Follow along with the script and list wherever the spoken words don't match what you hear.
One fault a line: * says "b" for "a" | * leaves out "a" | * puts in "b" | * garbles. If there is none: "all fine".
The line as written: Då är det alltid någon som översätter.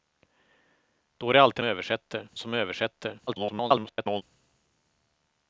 * says "översätter" for "någon"
* garbles